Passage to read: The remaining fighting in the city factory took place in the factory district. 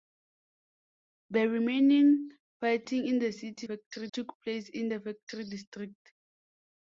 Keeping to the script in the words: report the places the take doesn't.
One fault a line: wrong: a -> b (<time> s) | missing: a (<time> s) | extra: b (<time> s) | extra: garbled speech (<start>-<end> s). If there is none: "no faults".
no faults